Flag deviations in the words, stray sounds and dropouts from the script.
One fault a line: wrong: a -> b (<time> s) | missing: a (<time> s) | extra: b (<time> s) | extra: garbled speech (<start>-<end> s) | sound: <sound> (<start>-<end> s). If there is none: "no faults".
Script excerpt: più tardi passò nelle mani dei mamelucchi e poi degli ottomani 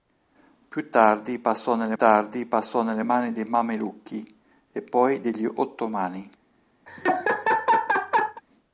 extra: tardi passò nelle (2.0 s)
sound: laugh (6.9-8.4 s)